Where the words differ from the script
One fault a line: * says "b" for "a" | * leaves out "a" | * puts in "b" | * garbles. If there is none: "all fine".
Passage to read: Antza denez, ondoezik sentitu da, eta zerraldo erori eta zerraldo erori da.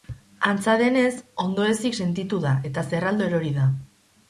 * leaves out "eta zerraldo erori"